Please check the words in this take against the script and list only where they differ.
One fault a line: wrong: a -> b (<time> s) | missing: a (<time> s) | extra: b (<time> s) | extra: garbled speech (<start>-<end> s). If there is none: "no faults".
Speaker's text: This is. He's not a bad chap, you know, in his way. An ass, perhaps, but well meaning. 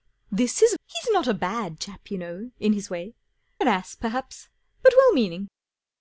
no faults